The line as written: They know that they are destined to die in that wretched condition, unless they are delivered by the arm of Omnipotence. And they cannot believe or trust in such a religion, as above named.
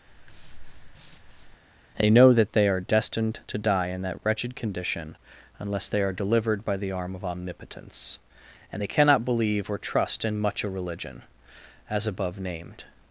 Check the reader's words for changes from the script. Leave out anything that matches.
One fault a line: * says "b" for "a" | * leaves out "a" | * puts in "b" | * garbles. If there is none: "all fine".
* says "much" for "such"